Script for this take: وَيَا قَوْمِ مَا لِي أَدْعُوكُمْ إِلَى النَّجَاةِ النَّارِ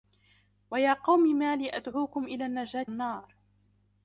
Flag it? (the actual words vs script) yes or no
no